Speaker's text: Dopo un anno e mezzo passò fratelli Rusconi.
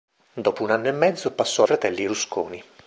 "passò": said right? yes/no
yes